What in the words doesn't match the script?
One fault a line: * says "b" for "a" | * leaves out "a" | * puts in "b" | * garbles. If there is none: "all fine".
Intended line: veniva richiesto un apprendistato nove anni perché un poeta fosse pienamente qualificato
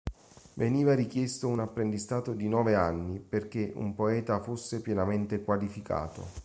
* puts in "di"